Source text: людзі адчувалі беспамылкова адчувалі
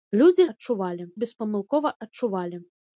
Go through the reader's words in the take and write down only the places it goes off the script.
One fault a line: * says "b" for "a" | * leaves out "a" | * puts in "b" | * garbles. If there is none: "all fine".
all fine